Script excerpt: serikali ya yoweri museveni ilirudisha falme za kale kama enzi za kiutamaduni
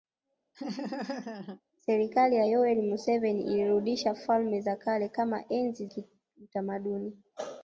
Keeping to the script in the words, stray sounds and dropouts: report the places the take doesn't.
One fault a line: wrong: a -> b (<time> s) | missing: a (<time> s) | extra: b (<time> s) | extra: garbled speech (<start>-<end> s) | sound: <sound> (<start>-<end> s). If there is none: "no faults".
sound: laugh (0.5-1.6 s)
missing: za (5.9 s)